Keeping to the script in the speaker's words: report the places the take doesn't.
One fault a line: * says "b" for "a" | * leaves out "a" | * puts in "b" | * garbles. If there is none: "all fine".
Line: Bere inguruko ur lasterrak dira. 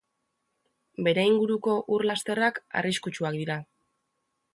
* puts in "arriskutsuak"